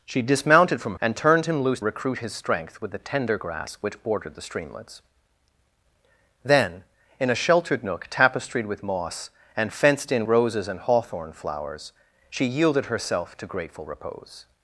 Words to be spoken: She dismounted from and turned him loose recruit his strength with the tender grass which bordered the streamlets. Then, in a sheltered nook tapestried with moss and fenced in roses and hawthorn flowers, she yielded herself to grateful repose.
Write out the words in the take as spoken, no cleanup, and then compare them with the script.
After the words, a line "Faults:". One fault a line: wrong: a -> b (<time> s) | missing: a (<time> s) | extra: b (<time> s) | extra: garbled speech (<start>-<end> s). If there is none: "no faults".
She dismounted from and turned him loose recruit his strength with the tender grass which bordered the streamlets. Then, in a sheltered nook tapestried with moss and fenced in roses and hawthorn flowers, she yielded herself to grateful repose.
Faults:
no faults